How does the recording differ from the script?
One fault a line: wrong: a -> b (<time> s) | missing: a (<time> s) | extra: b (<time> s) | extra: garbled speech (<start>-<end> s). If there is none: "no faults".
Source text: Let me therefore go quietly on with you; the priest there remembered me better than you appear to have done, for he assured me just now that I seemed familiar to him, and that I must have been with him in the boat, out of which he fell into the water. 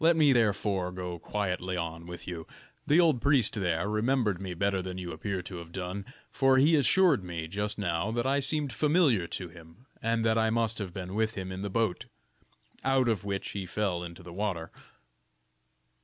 extra: old (3.0 s)